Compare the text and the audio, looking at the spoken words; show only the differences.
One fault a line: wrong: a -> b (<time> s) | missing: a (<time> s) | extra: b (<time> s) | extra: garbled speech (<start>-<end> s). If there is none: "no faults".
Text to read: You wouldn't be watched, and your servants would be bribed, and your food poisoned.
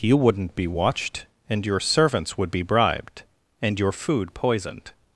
no faults